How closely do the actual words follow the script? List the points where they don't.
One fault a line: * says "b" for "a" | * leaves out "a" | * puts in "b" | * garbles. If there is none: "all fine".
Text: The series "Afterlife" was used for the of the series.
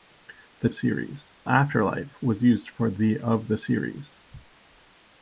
all fine